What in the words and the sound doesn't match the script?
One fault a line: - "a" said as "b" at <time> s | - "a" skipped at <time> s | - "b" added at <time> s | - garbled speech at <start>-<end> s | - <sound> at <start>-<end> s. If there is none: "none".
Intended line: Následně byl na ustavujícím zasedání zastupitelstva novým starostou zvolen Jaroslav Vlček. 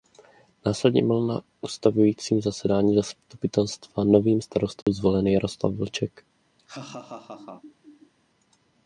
- dropout at 4.8-4.9 s
- laugh at 6.6-8.1 s